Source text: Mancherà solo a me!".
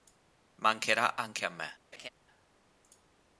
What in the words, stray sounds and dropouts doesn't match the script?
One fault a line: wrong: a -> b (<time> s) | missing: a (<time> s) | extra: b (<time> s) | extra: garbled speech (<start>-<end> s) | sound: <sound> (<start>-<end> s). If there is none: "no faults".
wrong: solo -> anche (1.1 s)
sound: laugh (1.9-2.1 s)